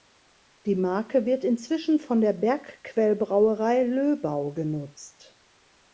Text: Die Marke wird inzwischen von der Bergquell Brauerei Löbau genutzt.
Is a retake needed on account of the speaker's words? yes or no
no